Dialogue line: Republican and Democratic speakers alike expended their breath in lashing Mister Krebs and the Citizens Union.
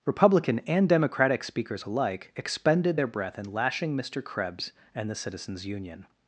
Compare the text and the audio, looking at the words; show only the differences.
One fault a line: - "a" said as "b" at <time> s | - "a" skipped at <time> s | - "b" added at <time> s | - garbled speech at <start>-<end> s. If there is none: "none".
none